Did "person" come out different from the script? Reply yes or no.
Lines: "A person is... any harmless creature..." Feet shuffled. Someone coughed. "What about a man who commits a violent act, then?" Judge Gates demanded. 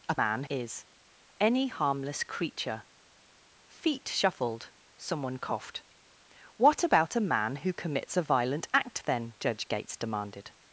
yes